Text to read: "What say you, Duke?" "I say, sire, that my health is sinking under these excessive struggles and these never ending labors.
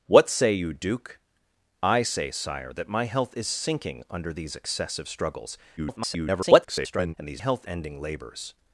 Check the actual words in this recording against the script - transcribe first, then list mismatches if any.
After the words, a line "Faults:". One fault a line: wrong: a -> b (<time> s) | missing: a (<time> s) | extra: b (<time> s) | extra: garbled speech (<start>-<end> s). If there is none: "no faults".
"What say you, Duke?" "I say, sire, that my health is sinking under these excessive struggles [garbled] and these health ending labors.
Faults:
extra: garbled speech (5.8-7.1 s)
wrong: never -> health (7.4 s)